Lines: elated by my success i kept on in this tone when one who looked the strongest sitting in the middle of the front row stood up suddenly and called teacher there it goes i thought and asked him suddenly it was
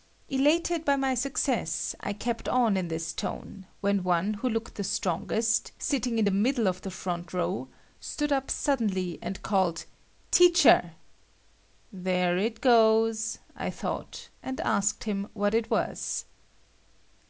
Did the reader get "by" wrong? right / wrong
right